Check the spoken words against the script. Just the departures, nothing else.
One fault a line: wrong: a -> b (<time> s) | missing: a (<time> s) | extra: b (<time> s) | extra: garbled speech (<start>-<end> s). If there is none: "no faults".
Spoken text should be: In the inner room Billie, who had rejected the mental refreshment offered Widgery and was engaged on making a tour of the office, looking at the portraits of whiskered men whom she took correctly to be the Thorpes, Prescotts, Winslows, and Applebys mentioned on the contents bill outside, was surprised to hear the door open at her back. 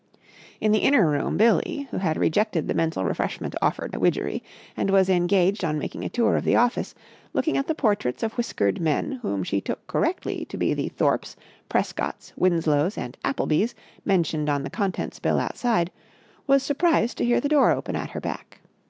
no faults